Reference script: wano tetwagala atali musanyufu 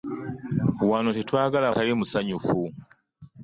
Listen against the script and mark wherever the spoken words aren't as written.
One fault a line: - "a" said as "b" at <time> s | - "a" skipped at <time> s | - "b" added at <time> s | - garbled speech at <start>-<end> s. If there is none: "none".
none